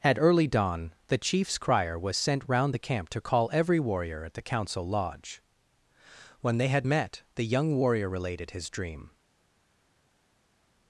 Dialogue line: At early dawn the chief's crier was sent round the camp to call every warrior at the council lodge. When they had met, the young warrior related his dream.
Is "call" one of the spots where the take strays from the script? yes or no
no